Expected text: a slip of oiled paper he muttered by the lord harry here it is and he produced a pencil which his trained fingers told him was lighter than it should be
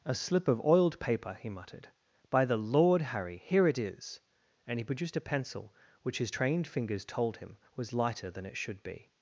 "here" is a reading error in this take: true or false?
false